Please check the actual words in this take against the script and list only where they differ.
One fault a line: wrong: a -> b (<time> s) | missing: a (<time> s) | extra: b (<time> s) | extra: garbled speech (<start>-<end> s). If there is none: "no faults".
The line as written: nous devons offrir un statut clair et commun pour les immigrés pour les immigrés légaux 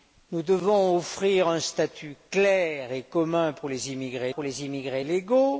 no faults